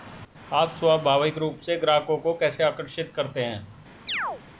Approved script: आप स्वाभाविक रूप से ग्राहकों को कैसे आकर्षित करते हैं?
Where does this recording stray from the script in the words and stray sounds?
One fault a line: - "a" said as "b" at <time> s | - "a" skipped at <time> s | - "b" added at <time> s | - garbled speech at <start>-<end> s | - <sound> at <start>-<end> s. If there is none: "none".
- chirp at 4.1-4.4 s